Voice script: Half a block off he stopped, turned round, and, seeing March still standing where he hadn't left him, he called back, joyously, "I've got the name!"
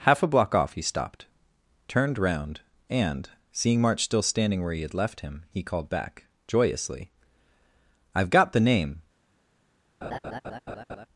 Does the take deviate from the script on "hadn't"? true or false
true